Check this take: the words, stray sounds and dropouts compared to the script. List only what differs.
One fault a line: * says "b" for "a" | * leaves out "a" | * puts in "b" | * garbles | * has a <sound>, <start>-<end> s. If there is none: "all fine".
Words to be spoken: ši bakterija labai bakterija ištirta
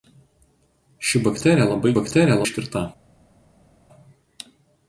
all fine